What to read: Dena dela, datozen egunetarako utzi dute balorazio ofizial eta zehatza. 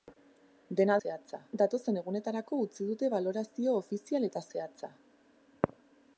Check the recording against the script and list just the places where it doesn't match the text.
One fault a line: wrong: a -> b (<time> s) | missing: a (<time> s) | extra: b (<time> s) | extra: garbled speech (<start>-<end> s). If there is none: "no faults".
wrong: dela -> zehatza (1.0 s)